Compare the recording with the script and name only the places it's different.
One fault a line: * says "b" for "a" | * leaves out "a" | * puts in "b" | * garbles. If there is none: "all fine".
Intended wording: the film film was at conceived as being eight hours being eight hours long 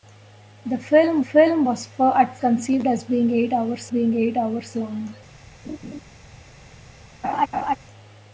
all fine